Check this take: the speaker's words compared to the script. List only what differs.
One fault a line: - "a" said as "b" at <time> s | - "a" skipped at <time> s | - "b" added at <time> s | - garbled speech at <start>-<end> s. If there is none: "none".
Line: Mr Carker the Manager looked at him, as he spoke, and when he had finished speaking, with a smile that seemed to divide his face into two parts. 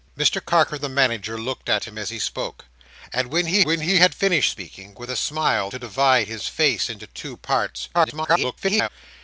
- "when he" added at 3.6 s
- "that seemed" skipped at 5.7 s
- garbled speech at 7.9-8.9 s